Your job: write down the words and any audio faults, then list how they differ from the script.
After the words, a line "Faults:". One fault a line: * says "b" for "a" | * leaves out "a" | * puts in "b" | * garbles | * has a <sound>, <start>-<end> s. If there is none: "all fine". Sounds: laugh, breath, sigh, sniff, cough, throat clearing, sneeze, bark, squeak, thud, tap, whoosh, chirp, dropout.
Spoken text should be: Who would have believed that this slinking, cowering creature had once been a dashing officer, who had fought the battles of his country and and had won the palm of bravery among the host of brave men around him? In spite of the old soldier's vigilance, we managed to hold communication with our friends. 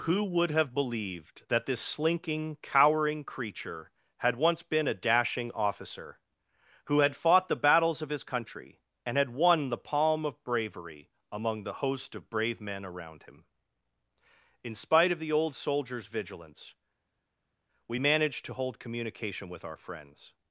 Who would have believed that this slinking, cowering creature had once been a dashing officer, who had fought the battles of his country and had won the palm of bravery among the host of brave men around him? In spite of the old soldier's vigilance, we managed to hold communication with our friends.
Faults:
* leaves out "and"